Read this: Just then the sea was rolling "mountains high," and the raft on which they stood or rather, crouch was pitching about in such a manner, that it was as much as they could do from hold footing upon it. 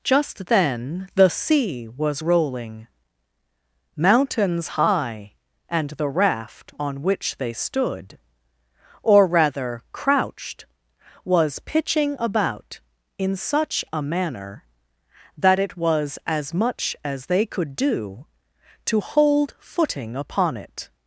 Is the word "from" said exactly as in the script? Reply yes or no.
no